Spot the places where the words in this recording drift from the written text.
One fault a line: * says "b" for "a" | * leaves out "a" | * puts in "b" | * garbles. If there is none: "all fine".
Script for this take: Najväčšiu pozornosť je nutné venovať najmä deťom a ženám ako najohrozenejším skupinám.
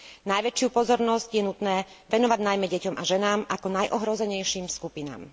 all fine